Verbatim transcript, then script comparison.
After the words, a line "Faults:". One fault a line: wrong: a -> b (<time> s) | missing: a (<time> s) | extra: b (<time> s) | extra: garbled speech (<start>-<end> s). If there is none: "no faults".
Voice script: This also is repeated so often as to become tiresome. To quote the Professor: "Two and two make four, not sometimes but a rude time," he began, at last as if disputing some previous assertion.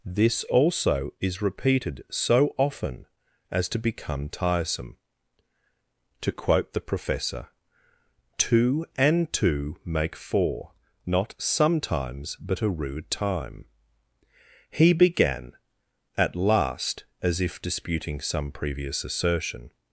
This also is repeated so often as to become tiresome. To quote the Professor: "Two and two make four, not sometimes but a rude time," he began, at last as if disputing some previous assertion.
Faults:
no faults